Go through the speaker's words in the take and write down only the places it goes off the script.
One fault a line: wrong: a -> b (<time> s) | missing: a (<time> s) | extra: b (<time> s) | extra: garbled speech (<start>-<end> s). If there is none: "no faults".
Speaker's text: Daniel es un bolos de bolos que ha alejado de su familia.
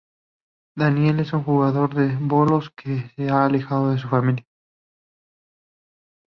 wrong: bolos -> jugador (1.4 s)
extra: se (3.1 s)